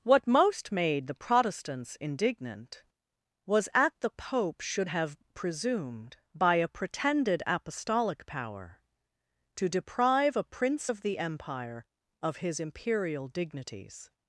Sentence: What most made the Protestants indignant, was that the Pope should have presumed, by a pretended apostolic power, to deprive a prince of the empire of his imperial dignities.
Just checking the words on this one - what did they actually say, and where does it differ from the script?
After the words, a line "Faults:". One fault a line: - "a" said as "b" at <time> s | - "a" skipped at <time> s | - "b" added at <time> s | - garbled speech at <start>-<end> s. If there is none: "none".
What most made the Protestants indignant, was at the Pope should have presumed, by a pretended apostolic power, to deprive a prince of the empire of his imperial dignities.
Faults:
- "that" said as "at" at 3.7 s